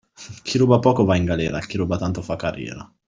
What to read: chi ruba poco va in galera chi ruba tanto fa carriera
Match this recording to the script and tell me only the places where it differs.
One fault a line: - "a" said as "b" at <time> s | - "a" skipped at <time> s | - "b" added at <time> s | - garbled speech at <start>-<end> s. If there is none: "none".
none